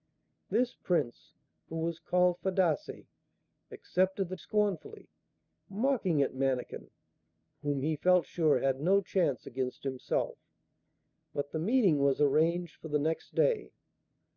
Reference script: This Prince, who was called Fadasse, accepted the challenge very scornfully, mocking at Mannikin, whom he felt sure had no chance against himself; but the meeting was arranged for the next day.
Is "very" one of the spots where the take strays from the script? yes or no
yes